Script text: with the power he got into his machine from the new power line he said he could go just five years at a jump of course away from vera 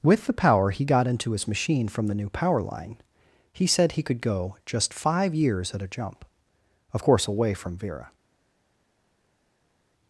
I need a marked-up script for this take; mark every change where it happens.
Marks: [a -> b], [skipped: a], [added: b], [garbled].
with the power he got into his machine from the new power line he said he could go just five years at a jump of course away from vera